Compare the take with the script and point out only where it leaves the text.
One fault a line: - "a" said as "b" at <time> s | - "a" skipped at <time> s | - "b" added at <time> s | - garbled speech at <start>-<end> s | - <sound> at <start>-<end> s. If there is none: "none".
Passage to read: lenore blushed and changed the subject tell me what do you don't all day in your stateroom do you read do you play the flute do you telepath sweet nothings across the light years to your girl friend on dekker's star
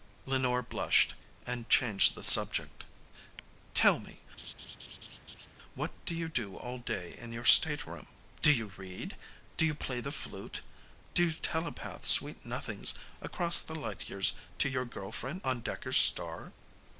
- laugh at 4.4-5.5 s
- "don't" said as "do" at 6.3 s